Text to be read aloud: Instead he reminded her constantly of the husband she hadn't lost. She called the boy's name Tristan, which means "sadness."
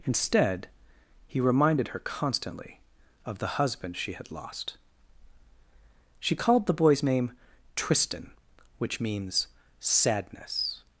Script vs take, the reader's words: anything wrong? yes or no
yes